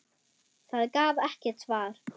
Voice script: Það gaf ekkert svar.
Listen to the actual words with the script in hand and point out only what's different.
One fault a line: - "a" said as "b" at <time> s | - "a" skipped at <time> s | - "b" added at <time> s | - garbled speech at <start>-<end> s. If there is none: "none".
none